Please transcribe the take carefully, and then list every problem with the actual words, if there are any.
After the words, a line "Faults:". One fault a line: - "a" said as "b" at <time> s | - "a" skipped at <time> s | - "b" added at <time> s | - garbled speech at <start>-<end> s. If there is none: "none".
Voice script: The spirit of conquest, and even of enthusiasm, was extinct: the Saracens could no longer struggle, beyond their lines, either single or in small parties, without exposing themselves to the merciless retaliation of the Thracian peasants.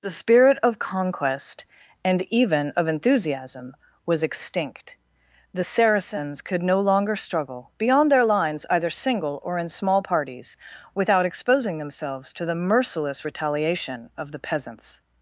The spirit of conquest, and even of enthusiasm, was extinct: the Saracens could no longer struggle, beyond their lines, either single or in small parties, without exposing themselves to the merciless retaliation of the peasants.
Faults:
- "Thracian" skipped at 14.4 s